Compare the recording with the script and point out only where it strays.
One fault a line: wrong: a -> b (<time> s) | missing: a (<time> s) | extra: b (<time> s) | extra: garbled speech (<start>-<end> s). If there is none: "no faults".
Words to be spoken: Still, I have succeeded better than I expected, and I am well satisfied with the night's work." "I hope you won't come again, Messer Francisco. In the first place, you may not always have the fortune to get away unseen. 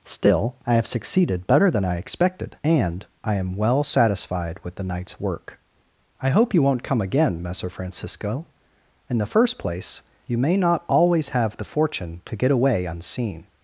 no faults